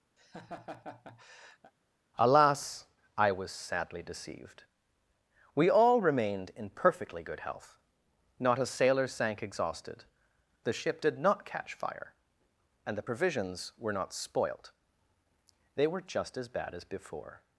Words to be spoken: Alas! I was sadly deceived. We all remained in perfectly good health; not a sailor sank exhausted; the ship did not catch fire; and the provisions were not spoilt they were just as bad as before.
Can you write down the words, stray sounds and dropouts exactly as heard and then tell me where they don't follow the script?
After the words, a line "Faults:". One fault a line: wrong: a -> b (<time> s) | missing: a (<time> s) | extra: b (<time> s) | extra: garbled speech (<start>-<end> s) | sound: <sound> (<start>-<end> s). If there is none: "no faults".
Alas! I was sadly deceived. We all remained in perfectly good health; not a sailor sank exhausted; the ship did not catch fire; and the provisions were not spoilt they were just as bad as before.
Faults:
sound: laugh (0.2-1.7 s)